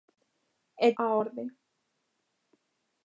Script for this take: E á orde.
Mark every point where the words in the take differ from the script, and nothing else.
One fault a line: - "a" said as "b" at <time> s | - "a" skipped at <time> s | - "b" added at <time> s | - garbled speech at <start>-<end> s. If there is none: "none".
none